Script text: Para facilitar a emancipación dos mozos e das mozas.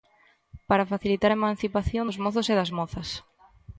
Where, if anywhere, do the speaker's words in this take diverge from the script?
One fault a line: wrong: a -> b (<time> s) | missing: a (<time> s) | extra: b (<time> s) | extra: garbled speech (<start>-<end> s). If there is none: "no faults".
no faults